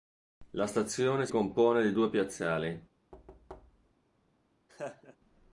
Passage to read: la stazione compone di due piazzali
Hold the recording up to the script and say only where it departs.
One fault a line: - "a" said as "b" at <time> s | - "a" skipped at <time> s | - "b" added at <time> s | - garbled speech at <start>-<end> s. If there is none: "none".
none